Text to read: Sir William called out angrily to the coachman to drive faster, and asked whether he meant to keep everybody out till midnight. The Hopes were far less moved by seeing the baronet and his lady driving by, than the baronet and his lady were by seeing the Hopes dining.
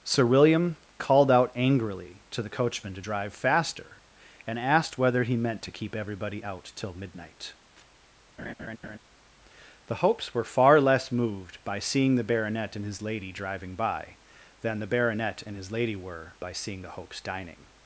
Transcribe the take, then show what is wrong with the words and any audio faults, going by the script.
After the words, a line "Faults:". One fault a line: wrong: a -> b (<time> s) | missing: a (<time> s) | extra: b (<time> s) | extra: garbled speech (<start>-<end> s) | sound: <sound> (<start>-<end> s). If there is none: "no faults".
Sir William called out angrily to the coachman to drive faster, and asked whether he meant to keep everybody out till midnight. The Hopes were far less moved by seeing the baronet and his lady driving by, than the baronet and his lady were by seeing the Hopes dining.
Faults:
sound: laugh (8.4-9.0 s)